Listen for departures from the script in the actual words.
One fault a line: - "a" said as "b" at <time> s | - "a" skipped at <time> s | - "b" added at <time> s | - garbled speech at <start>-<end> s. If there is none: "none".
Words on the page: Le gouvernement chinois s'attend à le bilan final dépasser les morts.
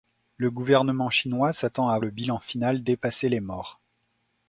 none